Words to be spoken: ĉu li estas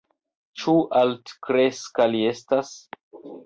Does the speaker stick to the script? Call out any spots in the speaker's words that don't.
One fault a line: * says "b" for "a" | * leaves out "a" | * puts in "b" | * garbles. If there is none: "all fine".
* puts in "altkreska"